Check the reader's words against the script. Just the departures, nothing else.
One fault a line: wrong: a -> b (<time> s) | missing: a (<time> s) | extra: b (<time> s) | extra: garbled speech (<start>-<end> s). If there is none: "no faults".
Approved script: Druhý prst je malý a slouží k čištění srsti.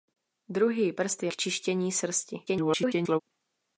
missing: malý a slouží (1.3 s)
extra: garbled speech (2.5-3.2 s)